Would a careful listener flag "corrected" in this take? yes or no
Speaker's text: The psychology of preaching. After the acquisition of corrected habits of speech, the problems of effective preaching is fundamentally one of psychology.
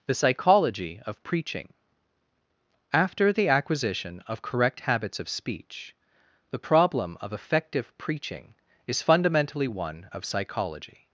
yes